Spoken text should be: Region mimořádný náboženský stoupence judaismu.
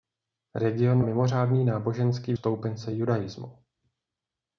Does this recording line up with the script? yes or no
yes